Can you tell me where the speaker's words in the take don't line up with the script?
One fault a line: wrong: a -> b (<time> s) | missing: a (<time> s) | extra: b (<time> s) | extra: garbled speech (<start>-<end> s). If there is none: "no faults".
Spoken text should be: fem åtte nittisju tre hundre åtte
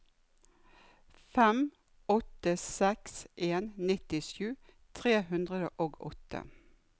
extra: seks en (2.6 s)
extra: og (5.9 s)